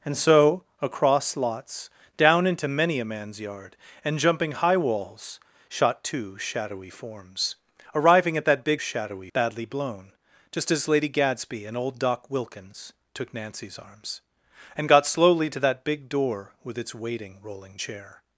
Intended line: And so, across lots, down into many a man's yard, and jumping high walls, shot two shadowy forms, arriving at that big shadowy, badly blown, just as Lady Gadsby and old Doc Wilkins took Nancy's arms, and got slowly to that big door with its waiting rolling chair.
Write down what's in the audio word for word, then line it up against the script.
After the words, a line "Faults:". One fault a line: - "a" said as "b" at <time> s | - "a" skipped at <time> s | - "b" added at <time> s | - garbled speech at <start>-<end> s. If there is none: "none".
And so, across lots, down into many a man's yard, and jumping high walls, shot two shadowy forms, arriving at that big shadowy, badly blown, just as Lady Gadsby and old Doc Wilkins took Nancy's arms, and got slowly to that big door with its waiting rolling chair.
Faults:
none